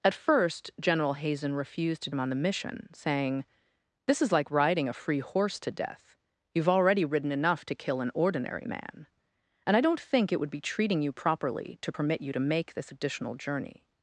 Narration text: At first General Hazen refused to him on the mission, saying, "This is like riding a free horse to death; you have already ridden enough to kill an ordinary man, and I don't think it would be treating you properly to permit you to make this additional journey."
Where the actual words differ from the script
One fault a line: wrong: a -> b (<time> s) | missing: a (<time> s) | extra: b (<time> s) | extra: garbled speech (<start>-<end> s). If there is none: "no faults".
no faults